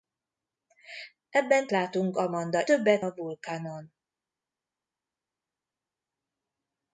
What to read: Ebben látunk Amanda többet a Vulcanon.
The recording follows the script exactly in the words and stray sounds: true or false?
true